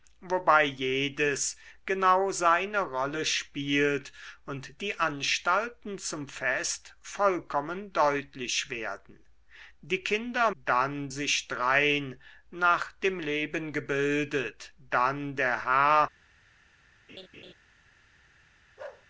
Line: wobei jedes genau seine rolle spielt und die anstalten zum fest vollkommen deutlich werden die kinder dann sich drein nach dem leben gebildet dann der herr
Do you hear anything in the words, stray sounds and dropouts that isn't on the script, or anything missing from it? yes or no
yes